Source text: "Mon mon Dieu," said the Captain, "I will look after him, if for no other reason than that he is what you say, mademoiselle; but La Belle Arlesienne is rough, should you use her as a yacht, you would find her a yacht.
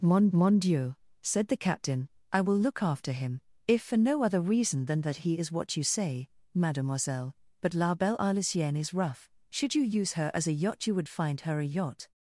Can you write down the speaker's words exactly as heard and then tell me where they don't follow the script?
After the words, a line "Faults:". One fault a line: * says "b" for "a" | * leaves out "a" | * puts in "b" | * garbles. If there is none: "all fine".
"Mon mon Dieu," said the Captain, "I will look after him, if for no other reason than that he is what you say, mademoiselle; but La Belle Arlesienne is rough, should you use her as a yacht, you would find her a yacht.
Faults:
all fine